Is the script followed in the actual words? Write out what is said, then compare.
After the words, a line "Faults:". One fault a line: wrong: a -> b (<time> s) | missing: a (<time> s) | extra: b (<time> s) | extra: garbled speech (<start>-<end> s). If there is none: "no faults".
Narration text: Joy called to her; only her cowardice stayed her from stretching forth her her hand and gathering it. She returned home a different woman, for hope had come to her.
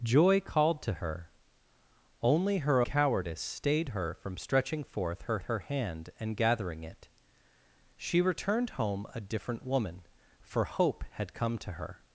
Joy called to her; only her cowardice stayed her from stretching forth her her hand and gathering it. She returned home a different woman, for hope had come to her.
Faults:
no faults